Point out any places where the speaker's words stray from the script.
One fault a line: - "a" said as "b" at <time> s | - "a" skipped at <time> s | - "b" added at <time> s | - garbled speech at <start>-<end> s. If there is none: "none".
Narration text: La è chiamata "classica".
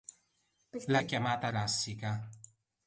none